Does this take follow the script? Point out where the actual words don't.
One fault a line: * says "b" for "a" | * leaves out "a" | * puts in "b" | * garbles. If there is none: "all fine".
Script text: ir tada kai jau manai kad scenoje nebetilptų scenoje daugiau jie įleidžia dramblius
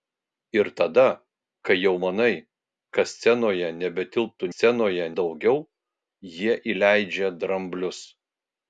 all fine